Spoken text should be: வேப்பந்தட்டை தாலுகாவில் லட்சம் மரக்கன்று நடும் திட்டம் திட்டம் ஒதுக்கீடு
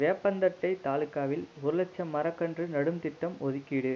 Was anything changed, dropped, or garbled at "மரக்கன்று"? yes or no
no